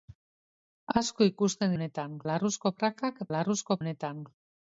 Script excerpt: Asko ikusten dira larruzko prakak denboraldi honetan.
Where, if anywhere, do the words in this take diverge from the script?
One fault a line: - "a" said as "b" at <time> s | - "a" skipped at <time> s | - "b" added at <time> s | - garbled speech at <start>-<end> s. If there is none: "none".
- "dira" said as "honetan" at 1.8 s
- "denboraldi" said as "larruzko" at 3.4 s